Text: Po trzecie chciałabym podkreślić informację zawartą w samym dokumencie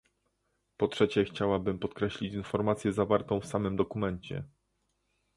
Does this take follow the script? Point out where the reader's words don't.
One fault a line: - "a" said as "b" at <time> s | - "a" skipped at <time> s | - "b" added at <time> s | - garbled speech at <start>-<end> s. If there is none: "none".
none